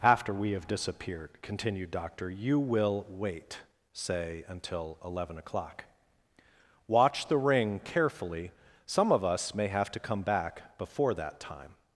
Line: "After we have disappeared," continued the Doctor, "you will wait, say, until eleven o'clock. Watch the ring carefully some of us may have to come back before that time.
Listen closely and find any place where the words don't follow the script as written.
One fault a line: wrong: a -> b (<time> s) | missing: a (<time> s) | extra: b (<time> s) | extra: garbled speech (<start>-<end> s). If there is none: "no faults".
missing: the (1.9 s)